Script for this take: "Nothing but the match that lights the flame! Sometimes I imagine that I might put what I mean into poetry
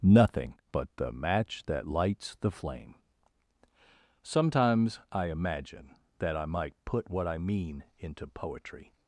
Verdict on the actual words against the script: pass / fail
pass